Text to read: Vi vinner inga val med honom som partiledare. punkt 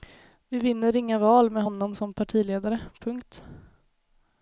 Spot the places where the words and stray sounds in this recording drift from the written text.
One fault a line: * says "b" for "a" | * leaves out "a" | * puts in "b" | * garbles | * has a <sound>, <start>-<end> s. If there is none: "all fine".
all fine